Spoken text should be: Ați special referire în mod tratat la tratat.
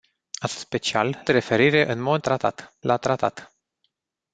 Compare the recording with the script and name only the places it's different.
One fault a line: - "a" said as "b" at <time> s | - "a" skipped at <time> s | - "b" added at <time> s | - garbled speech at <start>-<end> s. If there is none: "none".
none